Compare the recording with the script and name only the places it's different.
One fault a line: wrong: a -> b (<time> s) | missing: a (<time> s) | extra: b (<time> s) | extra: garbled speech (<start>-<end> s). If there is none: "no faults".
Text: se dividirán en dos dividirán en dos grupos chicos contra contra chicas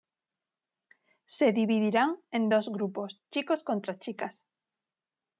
missing: dividirán en dos (2.7 s)
missing: contra (4.0 s)